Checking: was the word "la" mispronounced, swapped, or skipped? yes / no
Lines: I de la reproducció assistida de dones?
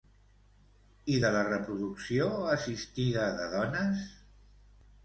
no